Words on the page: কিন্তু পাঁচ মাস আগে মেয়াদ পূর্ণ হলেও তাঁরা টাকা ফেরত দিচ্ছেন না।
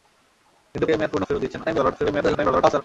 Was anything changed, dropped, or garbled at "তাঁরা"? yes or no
yes